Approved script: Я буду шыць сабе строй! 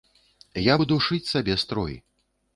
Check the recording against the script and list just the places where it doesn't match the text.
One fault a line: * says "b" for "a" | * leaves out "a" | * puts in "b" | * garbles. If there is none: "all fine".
all fine